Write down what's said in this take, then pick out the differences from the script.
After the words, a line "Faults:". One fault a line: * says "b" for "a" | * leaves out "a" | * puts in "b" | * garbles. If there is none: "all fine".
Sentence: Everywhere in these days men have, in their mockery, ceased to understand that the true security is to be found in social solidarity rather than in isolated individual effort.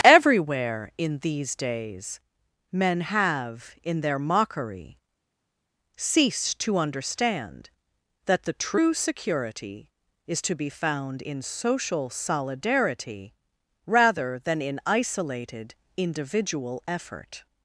Everywhere in these days men have, in their mockery, ceased to understand that the true security is to be found in social solidarity rather than in isolated individual effort.
Faults:
all fine